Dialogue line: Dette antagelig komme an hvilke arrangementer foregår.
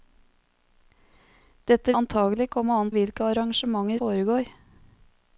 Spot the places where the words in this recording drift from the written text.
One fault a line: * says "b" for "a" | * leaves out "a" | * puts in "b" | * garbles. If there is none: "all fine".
all fine